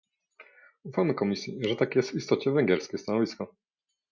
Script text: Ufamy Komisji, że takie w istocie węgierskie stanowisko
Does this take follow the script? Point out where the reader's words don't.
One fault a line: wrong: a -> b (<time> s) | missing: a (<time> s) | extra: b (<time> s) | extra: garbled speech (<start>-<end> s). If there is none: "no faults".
extra: jest (2.0 s)